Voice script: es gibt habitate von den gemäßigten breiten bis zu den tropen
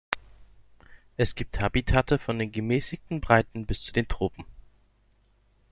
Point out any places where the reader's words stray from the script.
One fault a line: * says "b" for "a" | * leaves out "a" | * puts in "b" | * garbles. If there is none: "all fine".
all fine